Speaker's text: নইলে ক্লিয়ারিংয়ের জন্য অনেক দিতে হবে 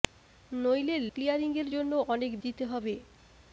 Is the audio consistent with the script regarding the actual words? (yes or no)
yes